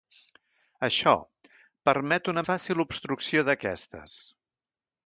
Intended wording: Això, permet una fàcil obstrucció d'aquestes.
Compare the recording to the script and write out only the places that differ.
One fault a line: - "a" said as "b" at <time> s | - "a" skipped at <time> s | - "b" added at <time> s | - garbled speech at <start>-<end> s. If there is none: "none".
none